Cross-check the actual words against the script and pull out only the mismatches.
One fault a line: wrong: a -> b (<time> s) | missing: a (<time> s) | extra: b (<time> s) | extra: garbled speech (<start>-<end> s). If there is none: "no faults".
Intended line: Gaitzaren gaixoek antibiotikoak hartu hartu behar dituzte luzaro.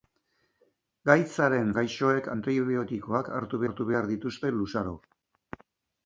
no faults